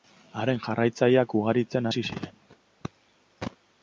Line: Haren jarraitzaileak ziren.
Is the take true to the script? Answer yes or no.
no